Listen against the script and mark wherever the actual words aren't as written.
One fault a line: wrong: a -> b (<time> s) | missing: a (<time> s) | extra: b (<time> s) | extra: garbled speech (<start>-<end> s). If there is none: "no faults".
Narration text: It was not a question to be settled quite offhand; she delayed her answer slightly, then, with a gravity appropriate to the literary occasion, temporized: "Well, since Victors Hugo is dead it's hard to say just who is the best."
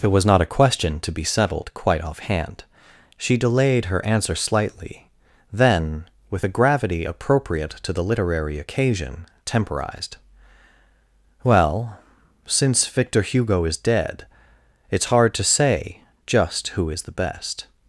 wrong: Victors -> Victor (12.9 s)